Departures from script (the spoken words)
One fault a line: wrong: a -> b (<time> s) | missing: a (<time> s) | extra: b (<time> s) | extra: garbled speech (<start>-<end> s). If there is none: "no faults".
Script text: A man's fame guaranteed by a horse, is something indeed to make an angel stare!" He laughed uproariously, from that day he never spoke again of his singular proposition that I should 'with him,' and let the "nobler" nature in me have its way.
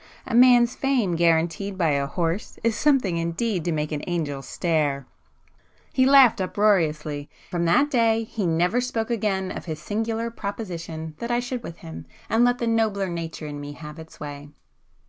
no faults